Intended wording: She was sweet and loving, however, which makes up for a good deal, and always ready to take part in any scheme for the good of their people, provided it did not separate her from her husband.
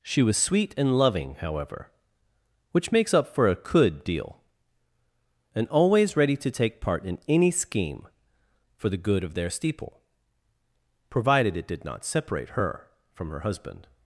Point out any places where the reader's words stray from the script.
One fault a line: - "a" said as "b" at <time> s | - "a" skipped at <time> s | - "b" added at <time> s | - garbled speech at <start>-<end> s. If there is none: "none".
- "good" said as "could" at 3.5 s
- "people" said as "steeple" at 9.5 s